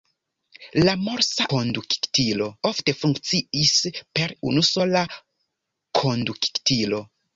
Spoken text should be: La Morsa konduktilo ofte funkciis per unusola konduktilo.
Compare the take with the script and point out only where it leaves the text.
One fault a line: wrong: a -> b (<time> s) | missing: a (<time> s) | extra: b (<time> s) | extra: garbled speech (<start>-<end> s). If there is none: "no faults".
no faults